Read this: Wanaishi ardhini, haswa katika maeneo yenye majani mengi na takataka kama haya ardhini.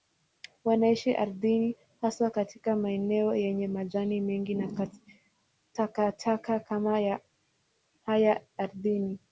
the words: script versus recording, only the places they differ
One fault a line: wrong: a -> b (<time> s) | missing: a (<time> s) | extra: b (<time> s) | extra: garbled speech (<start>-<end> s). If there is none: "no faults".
no faults